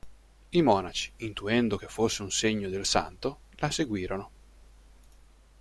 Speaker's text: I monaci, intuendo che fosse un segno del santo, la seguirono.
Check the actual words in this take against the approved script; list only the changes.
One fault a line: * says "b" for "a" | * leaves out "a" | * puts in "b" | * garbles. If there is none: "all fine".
all fine